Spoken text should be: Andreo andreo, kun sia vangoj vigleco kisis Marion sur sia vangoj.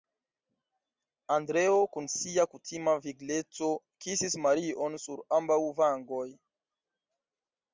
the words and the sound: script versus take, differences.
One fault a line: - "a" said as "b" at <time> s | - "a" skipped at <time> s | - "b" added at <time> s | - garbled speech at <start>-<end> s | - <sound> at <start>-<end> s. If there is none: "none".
- "andreo" skipped at 1.8 s
- "vangoj" said as "kutima" at 2.5 s
- "sia" said as "ambaŭ" at 5.4 s